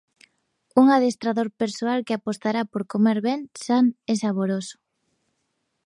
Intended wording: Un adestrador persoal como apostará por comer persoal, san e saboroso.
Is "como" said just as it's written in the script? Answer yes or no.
no